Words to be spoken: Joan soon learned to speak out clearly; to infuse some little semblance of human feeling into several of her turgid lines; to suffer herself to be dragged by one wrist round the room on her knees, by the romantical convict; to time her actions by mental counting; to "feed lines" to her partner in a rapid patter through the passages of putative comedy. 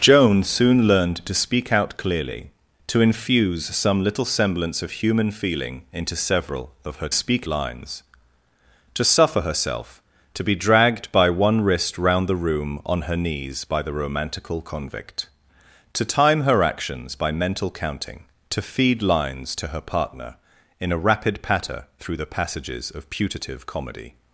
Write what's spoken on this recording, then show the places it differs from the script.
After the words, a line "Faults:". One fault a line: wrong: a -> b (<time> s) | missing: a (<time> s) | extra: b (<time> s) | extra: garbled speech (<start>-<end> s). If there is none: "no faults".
Joan soon learned to speak out clearly; to infuse some little semblance of human feeling into several of her speak lines; to suffer herself to be dragged by one wrist round the room on her knees, by the romantical convict; to time her actions by mental counting; to "feed lines" to her partner in a rapid patter through the passages of putative comedy.
Faults:
wrong: turgid -> speak (7.1 s)